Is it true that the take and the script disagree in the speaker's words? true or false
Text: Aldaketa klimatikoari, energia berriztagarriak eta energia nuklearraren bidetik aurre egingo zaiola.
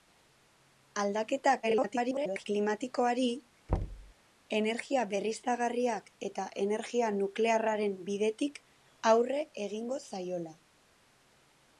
true